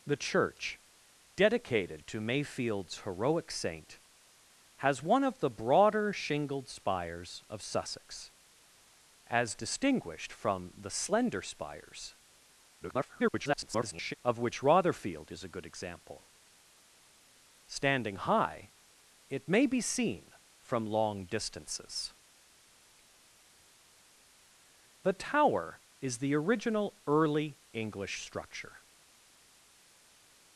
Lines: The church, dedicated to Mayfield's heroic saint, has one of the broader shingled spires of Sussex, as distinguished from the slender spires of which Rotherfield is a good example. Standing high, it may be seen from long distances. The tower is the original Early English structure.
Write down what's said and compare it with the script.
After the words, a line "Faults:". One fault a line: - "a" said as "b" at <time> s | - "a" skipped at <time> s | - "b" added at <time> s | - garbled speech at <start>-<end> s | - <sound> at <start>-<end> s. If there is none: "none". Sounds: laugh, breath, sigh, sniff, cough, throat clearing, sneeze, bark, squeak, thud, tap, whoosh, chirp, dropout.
The church, dedicated to Mayfield's heroic saint, has one of the broader shingled spires of Sussex, as distinguished from the slender spires [garbled] of which Rotherfield is a good example. Standing high, it may be seen from long distances. The tower is the original Early English structure.
Faults:
- garbled speech at 12.8-14.1 s